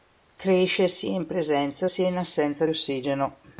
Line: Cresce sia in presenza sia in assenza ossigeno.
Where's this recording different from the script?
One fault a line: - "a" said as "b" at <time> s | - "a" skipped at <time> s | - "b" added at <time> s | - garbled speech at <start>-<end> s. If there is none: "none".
none